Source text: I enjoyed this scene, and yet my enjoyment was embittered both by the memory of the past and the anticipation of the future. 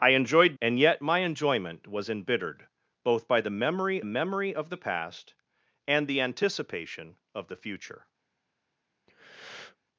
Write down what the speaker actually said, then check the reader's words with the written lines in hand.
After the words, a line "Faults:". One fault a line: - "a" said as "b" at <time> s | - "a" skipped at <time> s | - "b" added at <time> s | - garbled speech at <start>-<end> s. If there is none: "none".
I enjoyed and yet my enjoyment was embittered both by the memory memory of the past and the anticipation of the future.
Faults:
- "this scene" skipped at 0.6 s
- "memory" added at 4.0 s